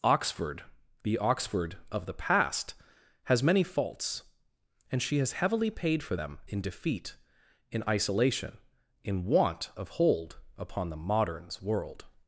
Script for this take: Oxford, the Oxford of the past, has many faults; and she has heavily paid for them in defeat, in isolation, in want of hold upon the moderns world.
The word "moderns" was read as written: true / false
true